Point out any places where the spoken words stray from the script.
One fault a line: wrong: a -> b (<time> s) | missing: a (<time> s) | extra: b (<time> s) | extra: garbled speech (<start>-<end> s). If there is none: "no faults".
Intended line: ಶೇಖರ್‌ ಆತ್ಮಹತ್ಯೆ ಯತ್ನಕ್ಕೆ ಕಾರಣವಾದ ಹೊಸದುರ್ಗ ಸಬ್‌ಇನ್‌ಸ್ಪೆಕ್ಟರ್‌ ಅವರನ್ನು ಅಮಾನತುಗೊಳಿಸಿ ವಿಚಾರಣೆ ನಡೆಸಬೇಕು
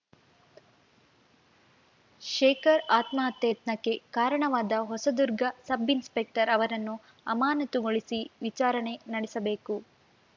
no faults